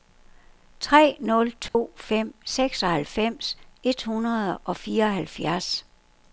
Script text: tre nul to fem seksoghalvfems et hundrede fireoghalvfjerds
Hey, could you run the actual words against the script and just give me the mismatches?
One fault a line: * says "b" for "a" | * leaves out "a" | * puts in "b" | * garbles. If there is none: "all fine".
* puts in "og"